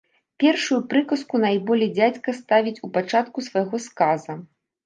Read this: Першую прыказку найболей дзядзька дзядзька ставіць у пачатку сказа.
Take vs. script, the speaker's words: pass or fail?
fail